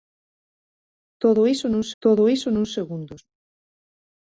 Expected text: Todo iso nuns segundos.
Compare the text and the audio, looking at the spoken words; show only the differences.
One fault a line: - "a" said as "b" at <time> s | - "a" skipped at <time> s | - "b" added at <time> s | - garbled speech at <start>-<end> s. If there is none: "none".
- "todo iso nuns" added at 2.0 s